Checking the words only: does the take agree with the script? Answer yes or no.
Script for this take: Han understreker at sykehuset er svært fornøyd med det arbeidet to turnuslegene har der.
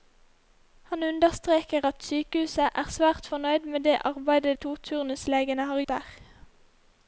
yes